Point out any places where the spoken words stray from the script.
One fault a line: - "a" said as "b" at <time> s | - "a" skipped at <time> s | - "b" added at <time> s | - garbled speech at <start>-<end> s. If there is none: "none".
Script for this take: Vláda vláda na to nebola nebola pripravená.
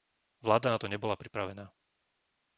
- "vláda" skipped at 0.7 s
- "nebola" skipped at 1.2 s